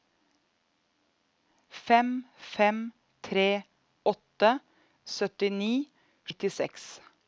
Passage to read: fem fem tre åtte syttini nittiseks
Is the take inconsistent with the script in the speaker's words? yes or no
no